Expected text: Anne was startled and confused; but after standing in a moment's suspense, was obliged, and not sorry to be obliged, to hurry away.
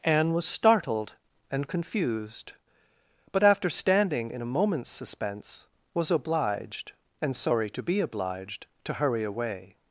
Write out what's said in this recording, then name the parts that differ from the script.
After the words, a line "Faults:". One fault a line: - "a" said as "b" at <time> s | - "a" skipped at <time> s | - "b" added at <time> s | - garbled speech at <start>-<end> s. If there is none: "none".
Anne was startled and confused; but after standing in a moment's suspense, was obliged, and sorry to be obliged, to hurry away.
Faults:
- "not" skipped at 7.3 s